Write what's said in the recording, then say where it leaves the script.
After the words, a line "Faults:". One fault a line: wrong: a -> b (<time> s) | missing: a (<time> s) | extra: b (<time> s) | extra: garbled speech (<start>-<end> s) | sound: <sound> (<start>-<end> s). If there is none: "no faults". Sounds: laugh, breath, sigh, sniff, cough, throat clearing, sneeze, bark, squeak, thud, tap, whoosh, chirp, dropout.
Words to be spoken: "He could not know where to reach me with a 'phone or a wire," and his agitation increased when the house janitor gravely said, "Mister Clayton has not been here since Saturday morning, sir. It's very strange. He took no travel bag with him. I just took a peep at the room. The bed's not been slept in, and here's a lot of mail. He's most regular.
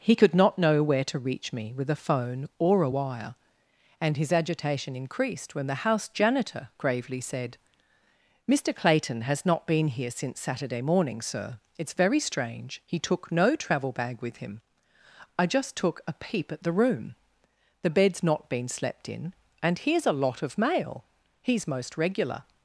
"He could not know where to reach me with a 'phone or a wire," and his agitation increased when the house janitor gravely said, "Mister Clayton has not been here since Saturday morning, sir. It's very strange. He took no travel bag with him. I just took a peep at the room. The bed's not been slept in, and here's a lot of mail. He's most regular.
Faults:
no faults